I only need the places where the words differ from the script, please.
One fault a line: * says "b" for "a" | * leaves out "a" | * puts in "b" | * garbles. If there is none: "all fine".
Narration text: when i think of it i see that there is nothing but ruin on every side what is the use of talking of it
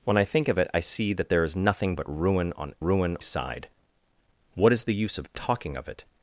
* says "ruin" for "every"